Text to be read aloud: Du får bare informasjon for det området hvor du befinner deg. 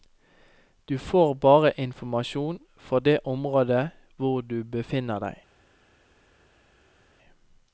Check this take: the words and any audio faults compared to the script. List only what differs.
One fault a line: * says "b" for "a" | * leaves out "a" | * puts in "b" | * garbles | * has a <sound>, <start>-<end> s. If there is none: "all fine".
all fine